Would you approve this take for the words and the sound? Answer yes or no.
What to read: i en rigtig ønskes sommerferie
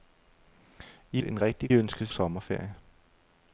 yes